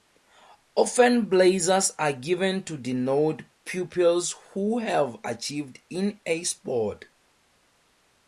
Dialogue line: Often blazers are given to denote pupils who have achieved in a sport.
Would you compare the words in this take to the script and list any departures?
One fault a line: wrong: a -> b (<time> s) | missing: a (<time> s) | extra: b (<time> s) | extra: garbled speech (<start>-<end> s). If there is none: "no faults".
no faults